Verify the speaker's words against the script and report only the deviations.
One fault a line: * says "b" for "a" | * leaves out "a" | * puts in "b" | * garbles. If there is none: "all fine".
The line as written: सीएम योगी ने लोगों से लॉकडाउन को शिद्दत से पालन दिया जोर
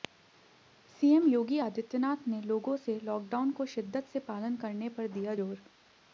* puts in "आदित्यनाथ"
* puts in "करने पर"